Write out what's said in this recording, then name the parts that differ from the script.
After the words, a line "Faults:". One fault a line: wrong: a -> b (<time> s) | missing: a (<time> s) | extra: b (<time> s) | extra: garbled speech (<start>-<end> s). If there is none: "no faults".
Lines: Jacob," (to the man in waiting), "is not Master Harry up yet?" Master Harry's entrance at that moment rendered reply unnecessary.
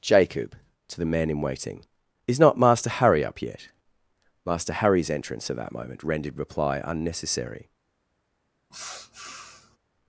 Jacob," (to the man in waiting), "is not Master Harry up yet?" Master Harry's entrance at that moment rendered reply unnecessary.
Faults:
no faults